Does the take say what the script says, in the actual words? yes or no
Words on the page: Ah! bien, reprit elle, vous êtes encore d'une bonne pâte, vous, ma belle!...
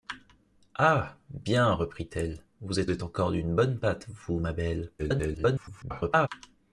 no